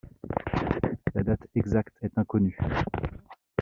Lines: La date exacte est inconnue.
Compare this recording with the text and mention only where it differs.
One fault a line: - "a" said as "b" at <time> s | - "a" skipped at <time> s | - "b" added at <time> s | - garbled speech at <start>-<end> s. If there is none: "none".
none